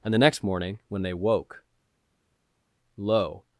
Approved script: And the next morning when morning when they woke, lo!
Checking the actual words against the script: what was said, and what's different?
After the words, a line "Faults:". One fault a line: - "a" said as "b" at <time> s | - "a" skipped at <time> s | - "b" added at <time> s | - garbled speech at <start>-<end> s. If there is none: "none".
And the next morning when they woke, lo!
Faults:
- "morning when" skipped at 1.0 s